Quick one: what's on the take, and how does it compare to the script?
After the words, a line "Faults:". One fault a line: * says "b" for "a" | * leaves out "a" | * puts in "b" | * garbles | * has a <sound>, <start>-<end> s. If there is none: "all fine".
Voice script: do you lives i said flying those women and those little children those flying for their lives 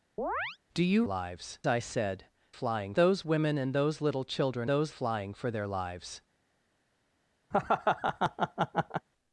do you lives i said flying those women and those little children those flying for their lives
Faults:
* has a chirp, 0.2-0.6 s
* has a laugh, 7.5-9.1 s